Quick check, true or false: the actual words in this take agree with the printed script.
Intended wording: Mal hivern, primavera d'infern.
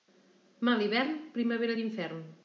true